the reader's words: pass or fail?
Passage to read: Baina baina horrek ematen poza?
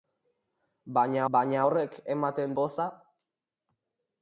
pass